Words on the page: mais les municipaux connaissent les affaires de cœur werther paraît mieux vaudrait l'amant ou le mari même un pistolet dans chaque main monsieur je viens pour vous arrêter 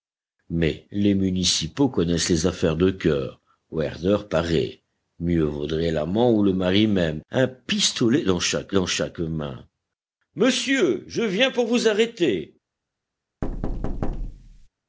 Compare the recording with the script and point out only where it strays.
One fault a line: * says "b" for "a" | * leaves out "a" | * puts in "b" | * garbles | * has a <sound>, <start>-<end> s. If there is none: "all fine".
* puts in "dans chaque"
* has a thud, 13.4-14.7 s